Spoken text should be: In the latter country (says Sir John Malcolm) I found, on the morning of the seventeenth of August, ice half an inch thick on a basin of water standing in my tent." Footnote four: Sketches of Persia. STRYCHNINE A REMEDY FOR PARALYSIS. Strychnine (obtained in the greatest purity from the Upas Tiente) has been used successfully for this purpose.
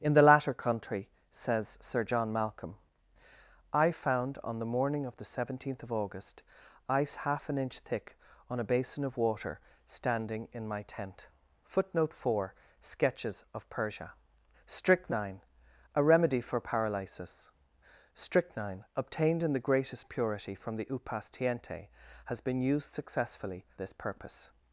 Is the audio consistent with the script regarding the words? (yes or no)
no